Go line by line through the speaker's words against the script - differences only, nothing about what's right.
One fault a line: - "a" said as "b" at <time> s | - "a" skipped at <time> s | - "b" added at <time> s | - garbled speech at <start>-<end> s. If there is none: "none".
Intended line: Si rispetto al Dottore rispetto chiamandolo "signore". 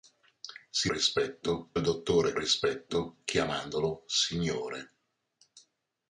none